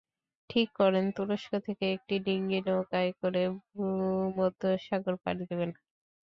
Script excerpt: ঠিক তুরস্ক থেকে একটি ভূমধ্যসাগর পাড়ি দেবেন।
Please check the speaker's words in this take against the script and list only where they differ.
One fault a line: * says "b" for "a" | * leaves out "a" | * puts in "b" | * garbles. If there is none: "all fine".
* puts in "করেন"
* puts in "ডিঙি নৌকায় করে"